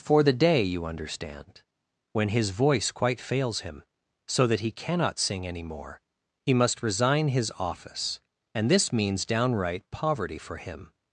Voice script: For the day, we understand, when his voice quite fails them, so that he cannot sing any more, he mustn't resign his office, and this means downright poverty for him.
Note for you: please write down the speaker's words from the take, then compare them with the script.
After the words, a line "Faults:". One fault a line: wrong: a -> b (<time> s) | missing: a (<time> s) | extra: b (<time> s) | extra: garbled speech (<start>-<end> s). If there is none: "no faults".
For the day, you understand, when his voice quite fails him, so that he cannot sing any more, he must resign his office, and this means downright poverty for him.
Faults:
wrong: we -> you (0.6 s)
wrong: them -> him (3.6 s)
wrong: mustn't -> must (6.5 s)